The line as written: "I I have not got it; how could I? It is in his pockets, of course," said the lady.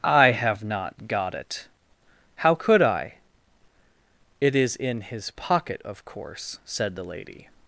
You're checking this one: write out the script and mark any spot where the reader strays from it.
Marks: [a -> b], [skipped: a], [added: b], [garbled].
"I [skipped: I] have not got it; how could I? It is in his [pockets, -> pocket] of course," said the lady.